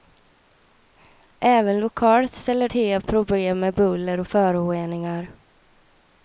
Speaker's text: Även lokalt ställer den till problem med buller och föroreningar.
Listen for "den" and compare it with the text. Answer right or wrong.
wrong